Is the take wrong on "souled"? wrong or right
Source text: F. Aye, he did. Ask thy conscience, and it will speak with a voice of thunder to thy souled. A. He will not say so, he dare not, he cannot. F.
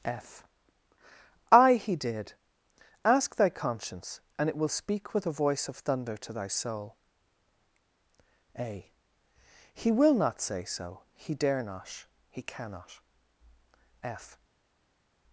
wrong